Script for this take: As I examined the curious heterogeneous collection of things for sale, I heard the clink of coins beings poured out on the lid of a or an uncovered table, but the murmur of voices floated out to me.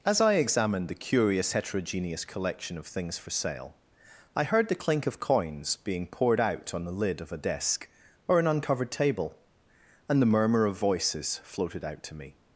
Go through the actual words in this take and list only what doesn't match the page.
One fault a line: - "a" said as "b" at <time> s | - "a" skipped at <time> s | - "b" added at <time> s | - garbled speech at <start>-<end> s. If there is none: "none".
- "beings" said as "being" at 5.8 s
- "desk" added at 7.4 s
- "but" said as "and" at 10.1 s